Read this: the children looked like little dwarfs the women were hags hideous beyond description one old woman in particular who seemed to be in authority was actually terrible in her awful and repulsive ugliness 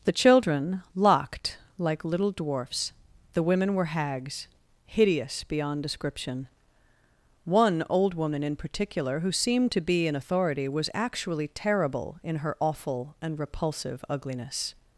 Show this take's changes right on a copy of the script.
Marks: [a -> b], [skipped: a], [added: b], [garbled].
the children [looked -> locked] like little dwarfs the women were hags hideous beyond description one old woman in particular who seemed to be in authority was actually terrible in her awful and repulsive ugliness